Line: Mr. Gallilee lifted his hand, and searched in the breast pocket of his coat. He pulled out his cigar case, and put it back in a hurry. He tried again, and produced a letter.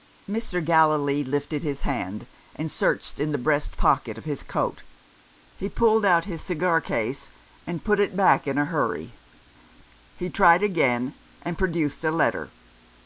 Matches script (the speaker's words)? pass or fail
pass